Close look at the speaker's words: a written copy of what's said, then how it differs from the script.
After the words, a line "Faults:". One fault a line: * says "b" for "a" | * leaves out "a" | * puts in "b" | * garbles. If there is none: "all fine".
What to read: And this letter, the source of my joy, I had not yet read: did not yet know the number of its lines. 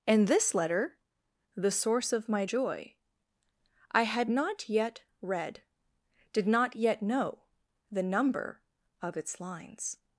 And this letter, the source of my joy, I had not yet read: did not yet know the number of its lines.
Faults:
all fine